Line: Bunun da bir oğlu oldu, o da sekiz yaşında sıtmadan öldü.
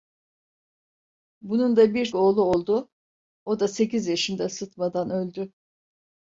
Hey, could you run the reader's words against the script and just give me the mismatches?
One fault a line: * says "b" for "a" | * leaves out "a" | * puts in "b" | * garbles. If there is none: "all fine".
all fine